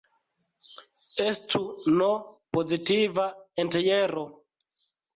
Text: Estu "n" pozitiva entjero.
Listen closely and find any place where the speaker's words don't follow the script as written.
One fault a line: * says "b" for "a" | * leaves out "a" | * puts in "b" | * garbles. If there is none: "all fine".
all fine